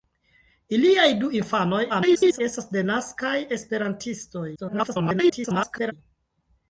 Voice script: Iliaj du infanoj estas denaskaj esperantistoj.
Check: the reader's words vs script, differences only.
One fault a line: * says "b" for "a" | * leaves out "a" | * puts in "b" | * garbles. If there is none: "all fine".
* garbles
* garbles